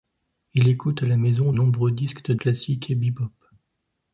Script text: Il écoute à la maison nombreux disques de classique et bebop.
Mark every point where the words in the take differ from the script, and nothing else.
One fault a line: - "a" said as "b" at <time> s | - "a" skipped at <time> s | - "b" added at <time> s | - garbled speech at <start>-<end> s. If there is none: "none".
none